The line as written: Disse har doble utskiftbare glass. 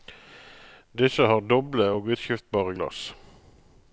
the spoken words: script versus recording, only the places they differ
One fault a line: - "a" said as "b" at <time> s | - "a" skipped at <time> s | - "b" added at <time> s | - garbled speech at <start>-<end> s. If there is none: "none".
- "og" added at 2.0 s